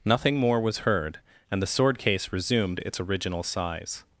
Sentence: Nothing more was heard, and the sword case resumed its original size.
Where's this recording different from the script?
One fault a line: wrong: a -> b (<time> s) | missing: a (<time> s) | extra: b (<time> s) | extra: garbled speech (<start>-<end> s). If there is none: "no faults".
no faults